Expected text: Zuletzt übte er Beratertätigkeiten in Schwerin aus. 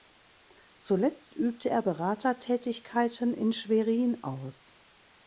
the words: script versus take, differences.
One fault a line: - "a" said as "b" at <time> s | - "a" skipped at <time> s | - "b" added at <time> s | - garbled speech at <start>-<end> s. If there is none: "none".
none